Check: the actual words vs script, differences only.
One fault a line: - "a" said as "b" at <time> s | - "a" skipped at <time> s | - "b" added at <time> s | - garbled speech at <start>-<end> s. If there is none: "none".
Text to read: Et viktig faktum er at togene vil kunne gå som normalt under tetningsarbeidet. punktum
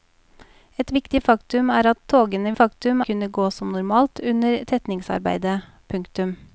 - "vil" said as "faktum" at 2.6 s